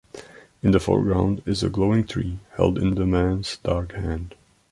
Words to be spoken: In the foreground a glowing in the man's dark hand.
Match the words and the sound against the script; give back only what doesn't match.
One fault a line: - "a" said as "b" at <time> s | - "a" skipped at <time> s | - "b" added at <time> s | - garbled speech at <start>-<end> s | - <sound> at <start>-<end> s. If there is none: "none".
- "is" added at 1.4 s
- "tree held" added at 2.0 s